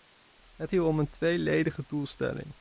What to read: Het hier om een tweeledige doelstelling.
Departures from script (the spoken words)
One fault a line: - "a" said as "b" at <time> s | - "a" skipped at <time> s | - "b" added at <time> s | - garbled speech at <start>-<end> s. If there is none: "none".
none